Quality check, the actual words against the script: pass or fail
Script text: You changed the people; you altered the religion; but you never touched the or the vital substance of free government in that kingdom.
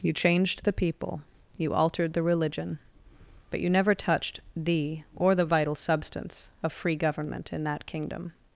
pass